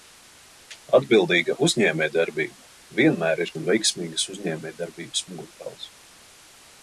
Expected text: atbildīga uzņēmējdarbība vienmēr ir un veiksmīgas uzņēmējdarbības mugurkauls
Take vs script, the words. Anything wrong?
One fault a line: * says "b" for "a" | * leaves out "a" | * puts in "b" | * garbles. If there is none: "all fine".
all fine